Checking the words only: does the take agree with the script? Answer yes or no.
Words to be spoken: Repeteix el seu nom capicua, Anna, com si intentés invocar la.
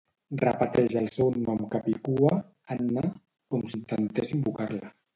no